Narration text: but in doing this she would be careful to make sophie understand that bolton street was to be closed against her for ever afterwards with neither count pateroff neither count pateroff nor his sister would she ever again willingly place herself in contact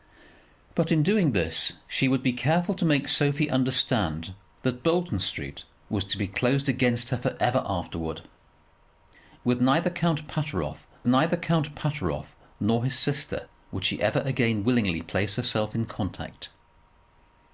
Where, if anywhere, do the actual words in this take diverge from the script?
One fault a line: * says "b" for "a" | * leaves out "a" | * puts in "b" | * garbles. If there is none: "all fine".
all fine